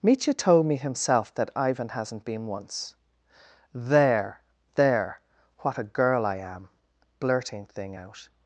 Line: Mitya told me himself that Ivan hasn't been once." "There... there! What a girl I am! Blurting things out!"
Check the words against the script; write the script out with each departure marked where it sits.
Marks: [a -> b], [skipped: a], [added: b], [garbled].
Mitya told me himself that Ivan hasn't been once." "There... there! What a girl I am! Blurting [things -> thing] out!"